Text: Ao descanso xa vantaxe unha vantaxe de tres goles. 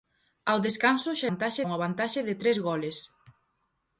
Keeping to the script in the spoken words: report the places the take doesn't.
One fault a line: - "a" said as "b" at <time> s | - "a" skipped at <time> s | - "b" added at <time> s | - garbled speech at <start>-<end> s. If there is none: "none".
none